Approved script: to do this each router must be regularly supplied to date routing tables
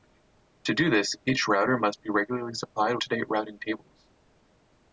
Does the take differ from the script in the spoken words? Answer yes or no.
no